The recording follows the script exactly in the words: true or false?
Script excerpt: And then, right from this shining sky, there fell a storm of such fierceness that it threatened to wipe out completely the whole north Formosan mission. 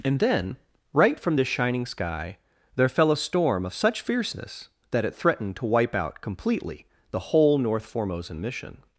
true